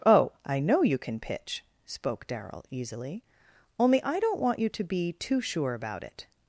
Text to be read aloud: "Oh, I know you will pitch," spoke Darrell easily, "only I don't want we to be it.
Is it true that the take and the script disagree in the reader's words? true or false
true